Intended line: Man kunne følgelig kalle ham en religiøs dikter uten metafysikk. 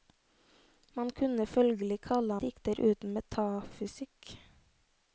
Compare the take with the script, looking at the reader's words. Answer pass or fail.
fail